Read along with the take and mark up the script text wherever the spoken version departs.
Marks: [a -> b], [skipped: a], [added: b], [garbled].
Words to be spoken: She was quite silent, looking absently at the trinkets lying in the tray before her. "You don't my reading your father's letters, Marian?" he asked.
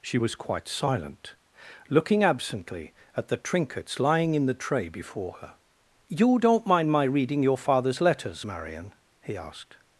She was quite silent, looking absently at the trinkets lying in the tray before her. "You don't [added: mind] my reading your father's letters, Marian?" he asked.